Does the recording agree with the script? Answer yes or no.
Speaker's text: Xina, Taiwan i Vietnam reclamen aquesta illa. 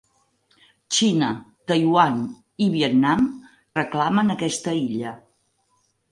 yes